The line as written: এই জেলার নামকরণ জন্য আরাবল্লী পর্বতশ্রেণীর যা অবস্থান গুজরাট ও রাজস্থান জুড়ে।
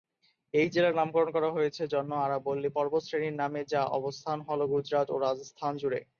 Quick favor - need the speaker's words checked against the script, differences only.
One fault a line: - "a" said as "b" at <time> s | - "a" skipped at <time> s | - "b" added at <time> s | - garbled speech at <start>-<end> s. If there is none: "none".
- "করা হয়েছে" added at 1.4 s
- "নামে" added at 3.4 s
- "হল" added at 4.5 s